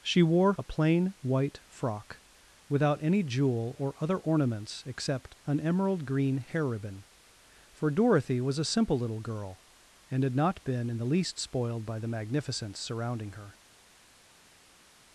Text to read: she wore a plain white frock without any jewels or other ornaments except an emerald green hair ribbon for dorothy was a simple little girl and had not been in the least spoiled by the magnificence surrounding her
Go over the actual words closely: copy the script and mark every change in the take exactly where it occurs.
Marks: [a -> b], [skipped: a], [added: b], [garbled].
she wore a plain white frock without any [jewels -> jewel] or other ornaments except an emerald green hair ribbon for dorothy was a simple little girl and had not been in the least spoiled by the magnificence surrounding her